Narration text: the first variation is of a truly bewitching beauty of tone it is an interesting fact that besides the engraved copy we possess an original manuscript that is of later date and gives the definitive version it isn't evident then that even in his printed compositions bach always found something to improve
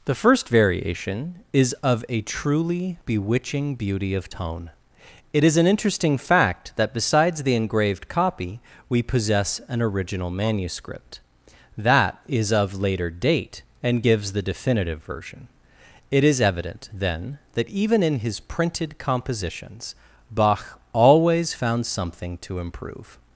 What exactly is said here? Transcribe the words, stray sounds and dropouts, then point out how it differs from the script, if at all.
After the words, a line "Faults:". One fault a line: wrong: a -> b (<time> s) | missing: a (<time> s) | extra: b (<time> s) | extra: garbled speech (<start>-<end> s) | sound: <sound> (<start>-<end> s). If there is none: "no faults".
the first variation is of a truly bewitching beauty of tone it is an interesting fact that besides the engraved copy we possess an original manuscript that is of later date and gives the definitive version it is evident then that even in his printed compositions bach always found something to improve
Faults:
wrong: isn't -> is (16.2 s)